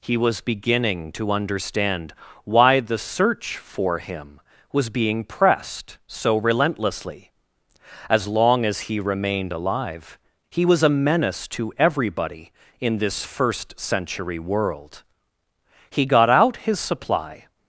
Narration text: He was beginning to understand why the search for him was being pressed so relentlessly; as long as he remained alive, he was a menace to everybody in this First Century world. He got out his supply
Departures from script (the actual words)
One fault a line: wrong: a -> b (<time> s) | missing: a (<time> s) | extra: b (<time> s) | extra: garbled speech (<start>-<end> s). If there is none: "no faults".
no faults